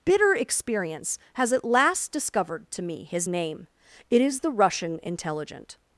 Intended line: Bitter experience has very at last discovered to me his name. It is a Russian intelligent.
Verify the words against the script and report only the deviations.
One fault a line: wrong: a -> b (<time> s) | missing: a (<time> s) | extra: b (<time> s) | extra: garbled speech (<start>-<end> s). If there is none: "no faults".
missing: very (1.5 s)
wrong: a -> the (4.4 s)